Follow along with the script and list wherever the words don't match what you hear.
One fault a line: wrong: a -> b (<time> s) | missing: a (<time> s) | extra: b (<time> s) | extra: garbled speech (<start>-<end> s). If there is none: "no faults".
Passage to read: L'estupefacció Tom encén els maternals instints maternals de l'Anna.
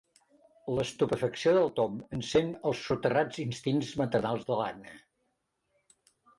extra: del (1.6 s)
wrong: maternals -> soterrats (2.9 s)